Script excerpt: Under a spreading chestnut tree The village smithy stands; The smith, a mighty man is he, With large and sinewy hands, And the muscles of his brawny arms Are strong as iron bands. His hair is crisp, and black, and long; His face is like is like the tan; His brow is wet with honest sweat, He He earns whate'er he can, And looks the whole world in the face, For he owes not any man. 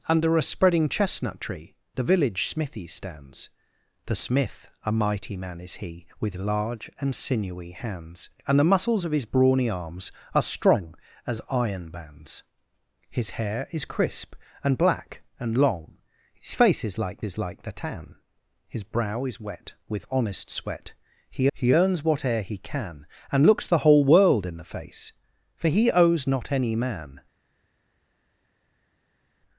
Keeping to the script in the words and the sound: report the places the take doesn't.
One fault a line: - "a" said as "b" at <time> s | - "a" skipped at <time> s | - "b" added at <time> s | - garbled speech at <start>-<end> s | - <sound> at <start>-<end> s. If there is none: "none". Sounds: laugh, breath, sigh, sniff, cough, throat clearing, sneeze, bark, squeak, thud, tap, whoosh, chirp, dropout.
none